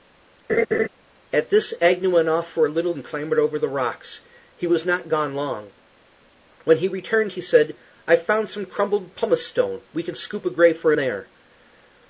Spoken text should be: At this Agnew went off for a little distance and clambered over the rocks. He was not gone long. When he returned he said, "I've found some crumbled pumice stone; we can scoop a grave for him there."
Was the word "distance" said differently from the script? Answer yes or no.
yes